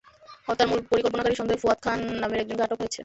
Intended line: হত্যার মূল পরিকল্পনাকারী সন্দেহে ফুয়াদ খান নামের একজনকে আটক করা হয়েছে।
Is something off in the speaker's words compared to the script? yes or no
yes